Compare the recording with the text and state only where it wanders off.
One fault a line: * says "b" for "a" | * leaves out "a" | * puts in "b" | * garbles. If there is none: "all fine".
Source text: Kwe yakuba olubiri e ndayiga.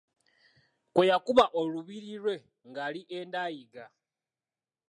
* puts in "lwe ng'ali"